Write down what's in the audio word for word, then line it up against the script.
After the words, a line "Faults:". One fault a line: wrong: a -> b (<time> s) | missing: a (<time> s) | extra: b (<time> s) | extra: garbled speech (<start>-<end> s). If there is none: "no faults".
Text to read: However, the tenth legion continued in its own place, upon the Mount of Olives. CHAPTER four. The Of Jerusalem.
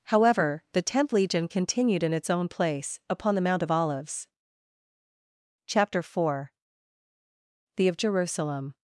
However, the tenth legion continued in its own place, upon the Mount of Olives. CHAPTER four. The Of Jerusalem.
Faults:
no faults